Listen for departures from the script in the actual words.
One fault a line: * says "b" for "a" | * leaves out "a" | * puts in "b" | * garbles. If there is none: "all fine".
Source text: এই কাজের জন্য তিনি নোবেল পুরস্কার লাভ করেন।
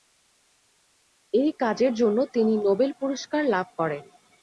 all fine